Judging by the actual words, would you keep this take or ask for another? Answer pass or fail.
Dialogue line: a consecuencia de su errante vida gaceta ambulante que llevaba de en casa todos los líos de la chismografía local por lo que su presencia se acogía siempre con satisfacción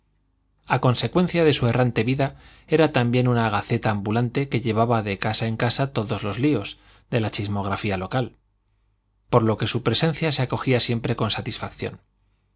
fail